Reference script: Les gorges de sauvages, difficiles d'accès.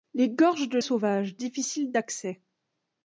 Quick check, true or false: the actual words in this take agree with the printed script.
true